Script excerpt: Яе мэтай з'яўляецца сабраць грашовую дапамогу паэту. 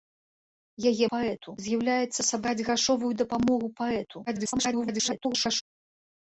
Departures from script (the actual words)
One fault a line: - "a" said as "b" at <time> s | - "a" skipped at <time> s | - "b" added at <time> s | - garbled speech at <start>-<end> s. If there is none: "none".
- "мэтай" said as "паэту" at 1.1 s
- garbled speech at 4.3-5.6 s